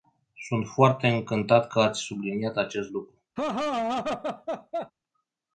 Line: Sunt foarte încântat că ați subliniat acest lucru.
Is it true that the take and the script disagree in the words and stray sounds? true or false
true